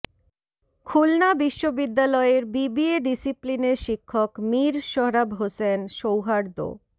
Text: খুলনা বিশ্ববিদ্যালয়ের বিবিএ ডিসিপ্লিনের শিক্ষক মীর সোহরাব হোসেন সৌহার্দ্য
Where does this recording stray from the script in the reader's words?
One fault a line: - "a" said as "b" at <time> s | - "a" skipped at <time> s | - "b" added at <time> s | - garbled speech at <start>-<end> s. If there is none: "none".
none